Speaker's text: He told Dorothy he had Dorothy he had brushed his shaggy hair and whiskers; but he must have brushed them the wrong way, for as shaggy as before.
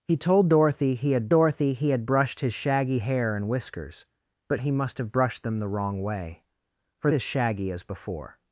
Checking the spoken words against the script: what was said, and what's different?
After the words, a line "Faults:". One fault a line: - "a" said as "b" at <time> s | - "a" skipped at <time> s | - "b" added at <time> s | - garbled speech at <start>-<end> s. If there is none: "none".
He told Dorothy he had Dorothy he had brushed his shaggy hair and whiskers; but he must have brushed them the wrong way, for as shaggy as before.
Faults:
none